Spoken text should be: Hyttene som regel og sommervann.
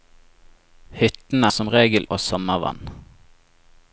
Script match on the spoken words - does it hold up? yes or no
yes